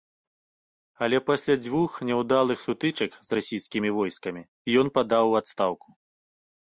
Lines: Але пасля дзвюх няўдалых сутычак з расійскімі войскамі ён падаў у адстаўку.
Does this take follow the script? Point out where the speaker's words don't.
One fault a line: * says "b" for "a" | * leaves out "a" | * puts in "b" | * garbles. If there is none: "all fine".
all fine